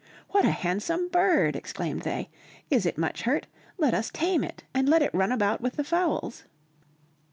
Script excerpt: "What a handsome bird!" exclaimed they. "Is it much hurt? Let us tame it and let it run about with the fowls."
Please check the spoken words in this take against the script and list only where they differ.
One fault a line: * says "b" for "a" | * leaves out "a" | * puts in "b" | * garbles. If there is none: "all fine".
all fine